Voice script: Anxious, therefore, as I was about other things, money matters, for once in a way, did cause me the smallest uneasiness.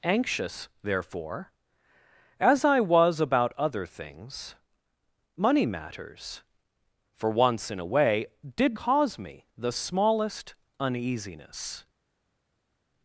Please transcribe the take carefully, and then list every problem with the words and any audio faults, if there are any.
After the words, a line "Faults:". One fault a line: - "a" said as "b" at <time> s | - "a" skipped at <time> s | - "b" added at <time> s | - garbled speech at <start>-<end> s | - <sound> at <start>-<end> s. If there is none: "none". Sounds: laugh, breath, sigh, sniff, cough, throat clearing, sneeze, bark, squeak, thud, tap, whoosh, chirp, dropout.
Anxious, therefore, as I was about other things, money matters, for once in a way, did cause me the smallest uneasiness.
Faults:
none